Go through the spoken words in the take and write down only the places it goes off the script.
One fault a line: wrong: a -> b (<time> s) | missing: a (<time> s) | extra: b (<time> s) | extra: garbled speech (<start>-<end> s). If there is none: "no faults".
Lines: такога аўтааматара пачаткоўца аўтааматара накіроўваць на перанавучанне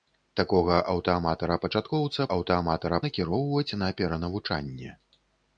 no faults